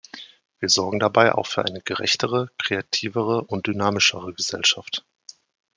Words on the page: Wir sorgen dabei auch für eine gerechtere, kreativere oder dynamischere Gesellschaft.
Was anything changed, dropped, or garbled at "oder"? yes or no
yes